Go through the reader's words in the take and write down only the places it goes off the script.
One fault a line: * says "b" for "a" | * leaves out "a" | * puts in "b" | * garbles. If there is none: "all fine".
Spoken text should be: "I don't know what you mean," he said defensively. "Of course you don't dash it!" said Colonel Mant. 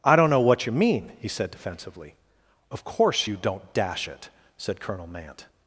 all fine